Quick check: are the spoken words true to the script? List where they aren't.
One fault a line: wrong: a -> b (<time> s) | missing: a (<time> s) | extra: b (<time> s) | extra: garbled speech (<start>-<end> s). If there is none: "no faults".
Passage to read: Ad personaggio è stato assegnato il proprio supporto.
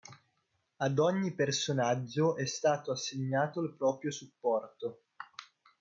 extra: ogni (1.0 s)